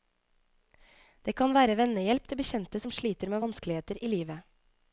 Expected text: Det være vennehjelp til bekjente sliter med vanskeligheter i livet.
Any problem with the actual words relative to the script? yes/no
yes